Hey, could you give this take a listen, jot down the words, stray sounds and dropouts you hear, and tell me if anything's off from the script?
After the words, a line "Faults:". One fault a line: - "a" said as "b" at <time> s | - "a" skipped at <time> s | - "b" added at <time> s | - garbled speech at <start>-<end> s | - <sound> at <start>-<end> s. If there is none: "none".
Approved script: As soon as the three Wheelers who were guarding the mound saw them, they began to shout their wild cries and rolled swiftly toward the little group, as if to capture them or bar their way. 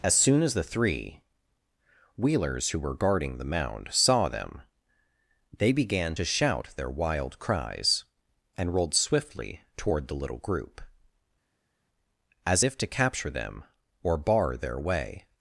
As soon as the three Wheelers who were guarding the mound saw them, they began to shout their wild cries and rolled swiftly toward the little group, as if to capture them or bar their way.
Faults:
none